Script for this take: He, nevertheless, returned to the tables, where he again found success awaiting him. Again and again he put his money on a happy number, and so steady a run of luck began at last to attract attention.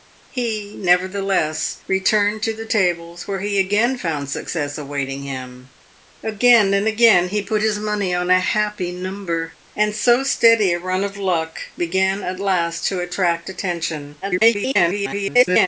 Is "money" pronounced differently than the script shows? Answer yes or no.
no